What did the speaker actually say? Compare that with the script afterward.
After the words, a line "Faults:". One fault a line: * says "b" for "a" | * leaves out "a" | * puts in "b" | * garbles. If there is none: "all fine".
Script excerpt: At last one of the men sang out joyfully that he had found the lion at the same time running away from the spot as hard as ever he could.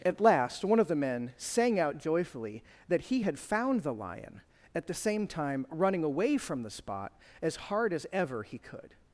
At last one of the men sang out joyfully that he had found the lion at the same time running away from the spot as hard as ever he could.
Faults:
all fine